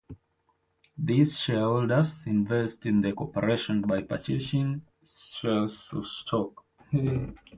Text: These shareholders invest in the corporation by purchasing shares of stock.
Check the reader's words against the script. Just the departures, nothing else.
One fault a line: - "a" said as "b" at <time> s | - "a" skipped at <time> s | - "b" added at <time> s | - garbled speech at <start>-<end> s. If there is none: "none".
none